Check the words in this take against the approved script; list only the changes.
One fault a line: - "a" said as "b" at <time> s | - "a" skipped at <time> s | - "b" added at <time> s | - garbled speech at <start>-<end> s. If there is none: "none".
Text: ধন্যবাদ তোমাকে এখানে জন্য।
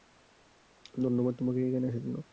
- "আসার" added at 1.9 s